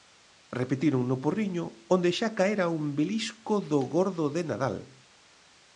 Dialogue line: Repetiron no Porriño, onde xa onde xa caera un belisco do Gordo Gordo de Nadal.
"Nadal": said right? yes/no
yes